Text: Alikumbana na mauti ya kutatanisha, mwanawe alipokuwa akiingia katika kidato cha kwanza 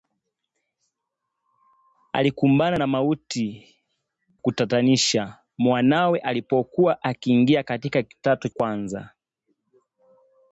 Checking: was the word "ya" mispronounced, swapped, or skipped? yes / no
yes